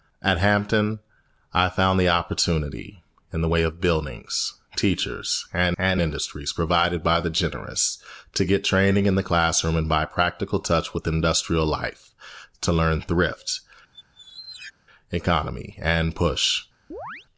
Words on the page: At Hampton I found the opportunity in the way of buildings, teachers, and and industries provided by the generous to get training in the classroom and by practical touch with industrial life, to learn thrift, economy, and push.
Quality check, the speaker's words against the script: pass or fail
pass